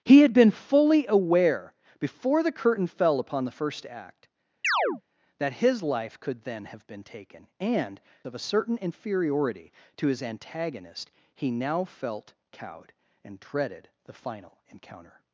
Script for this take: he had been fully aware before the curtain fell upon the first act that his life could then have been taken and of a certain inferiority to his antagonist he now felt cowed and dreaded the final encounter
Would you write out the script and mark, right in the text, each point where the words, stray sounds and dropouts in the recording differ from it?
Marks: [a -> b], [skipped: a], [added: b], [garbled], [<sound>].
he had been fully aware before the curtain fell upon the first act [chirp] that his life could then have been taken and of a certain inferiority to his antagonist he now felt cowed and dreaded the final encounter